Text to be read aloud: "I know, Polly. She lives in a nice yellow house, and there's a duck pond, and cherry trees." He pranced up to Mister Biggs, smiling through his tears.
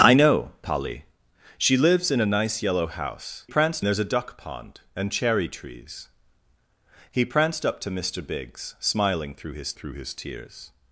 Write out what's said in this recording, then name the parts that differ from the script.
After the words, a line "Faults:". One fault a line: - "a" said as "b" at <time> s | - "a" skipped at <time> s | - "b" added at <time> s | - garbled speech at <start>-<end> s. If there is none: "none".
"I know, Polly. She lives in a nice yellow house, pranced there's a duck pond, and cherry trees." He pranced up to Mister Biggs, smiling through his through his tears.
Faults:
- "and" said as "pranced" at 3.5 s
- "through his" added at 9.7 s